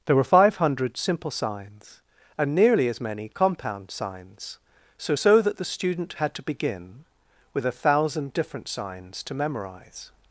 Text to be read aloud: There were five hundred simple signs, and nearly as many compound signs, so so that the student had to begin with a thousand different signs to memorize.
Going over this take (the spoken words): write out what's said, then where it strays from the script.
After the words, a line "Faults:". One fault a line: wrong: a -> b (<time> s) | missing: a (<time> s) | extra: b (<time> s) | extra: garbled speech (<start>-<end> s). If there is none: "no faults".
There were five hundred simple signs, and nearly as many compound signs, so so that the student had to begin with a thousand different signs to memorize.
Faults:
no faults